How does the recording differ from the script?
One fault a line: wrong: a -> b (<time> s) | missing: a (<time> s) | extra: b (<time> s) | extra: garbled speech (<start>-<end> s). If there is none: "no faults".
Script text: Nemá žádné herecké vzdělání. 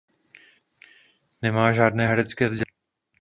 no faults